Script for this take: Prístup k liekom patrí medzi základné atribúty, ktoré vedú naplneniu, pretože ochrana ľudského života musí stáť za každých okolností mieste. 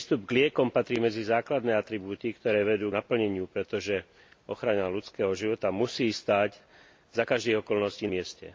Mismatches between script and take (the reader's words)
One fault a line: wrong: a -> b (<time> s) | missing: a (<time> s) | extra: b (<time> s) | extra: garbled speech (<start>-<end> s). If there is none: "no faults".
no faults